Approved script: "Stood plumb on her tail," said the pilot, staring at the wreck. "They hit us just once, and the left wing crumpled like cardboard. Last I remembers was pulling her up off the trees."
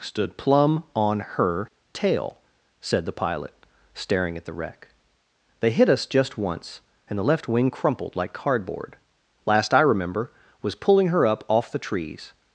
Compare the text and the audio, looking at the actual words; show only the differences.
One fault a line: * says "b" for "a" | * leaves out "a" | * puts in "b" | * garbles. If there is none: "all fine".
* says "remember" for "remembers"